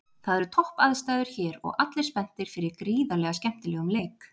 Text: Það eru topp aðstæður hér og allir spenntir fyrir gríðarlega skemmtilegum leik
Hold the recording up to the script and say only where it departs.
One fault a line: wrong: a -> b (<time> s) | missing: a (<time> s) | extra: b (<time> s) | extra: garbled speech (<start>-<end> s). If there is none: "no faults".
no faults